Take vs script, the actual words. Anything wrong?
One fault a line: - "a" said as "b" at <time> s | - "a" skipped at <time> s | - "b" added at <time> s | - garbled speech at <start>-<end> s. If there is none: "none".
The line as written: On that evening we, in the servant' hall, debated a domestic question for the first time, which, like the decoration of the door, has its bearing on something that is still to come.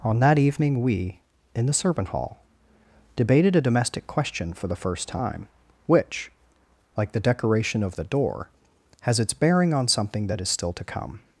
none